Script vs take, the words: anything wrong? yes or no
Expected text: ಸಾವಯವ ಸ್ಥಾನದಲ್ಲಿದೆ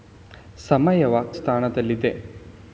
no